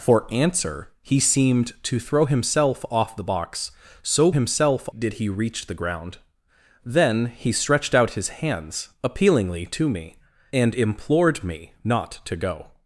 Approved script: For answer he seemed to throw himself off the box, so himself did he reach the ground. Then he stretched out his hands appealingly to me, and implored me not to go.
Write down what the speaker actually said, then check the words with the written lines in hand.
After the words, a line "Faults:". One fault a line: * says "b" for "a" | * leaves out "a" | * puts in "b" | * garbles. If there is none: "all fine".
For answer he seemed to throw himself off the box, so himself did he reach the ground. Then he stretched out his hands appealingly to me, and implored me not to go.
Faults:
all fine